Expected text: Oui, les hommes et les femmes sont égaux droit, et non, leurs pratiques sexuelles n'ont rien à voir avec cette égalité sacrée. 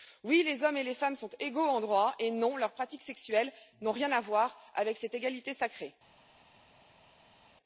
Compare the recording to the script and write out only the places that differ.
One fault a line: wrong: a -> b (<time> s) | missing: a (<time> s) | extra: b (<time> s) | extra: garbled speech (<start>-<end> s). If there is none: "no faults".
extra: en (1.7 s)